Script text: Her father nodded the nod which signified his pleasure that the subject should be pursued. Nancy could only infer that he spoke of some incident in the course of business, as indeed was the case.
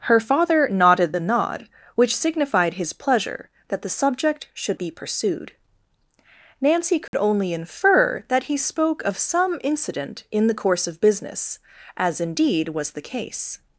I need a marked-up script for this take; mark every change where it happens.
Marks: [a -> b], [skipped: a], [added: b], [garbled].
Her father nodded the nod which signified his pleasure that the subject should be pursued. Nancy could only infer that he spoke of some incident in the course of business, as indeed was the case.